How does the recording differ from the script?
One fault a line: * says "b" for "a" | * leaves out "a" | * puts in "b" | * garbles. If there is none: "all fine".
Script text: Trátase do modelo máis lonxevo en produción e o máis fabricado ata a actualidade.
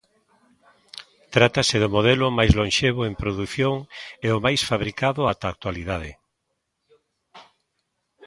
all fine